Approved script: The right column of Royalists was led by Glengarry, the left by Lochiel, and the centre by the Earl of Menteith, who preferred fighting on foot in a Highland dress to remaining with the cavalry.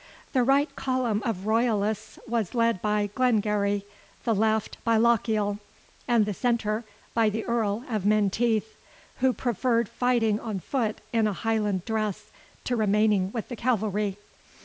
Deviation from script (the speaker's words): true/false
false